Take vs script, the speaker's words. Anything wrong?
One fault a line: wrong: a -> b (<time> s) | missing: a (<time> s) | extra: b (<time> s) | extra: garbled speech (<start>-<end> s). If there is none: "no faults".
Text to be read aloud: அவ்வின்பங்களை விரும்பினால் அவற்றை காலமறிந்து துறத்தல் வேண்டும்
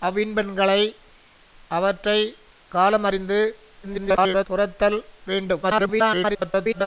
missing: விரும்பினால் (0.8 s)
extra: garbled speech (3.8-4.5 s)
extra: garbled speech (5.6-6.9 s)